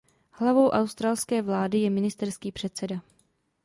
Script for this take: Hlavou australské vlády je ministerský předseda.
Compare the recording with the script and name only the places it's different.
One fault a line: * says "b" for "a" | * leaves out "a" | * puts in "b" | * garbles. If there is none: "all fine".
all fine